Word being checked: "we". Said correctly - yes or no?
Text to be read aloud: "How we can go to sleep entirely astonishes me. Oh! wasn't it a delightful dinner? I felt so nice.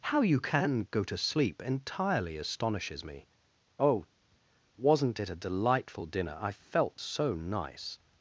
no